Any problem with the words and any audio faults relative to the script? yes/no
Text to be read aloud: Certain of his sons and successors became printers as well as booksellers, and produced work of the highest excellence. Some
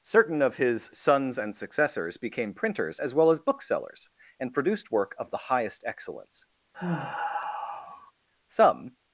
yes